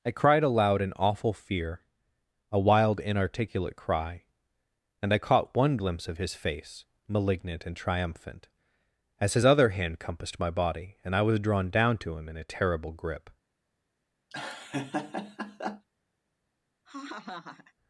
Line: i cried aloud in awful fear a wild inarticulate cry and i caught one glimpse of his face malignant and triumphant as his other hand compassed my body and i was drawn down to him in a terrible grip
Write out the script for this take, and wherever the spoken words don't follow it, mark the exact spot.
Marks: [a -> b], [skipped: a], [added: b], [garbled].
i cried aloud in awful fear a wild inarticulate cry and i caught one glimpse of his face malignant and triumphant as his other hand compassed my body and i was drawn down to him in a terrible grip